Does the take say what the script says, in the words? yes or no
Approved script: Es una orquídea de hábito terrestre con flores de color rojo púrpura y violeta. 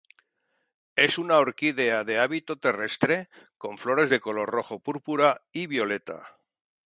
yes